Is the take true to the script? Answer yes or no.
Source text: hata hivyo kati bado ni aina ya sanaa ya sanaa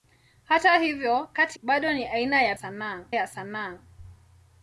yes